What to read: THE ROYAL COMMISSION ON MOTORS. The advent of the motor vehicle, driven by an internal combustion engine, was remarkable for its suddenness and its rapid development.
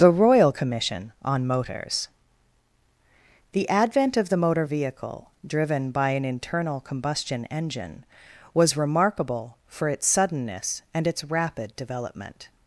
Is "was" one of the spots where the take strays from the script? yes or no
no